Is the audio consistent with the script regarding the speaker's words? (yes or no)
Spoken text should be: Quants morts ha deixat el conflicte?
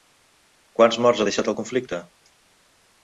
yes